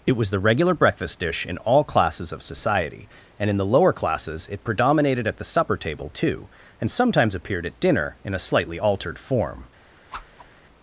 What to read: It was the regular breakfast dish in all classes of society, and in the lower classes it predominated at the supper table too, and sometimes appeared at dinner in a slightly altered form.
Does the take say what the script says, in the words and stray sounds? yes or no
no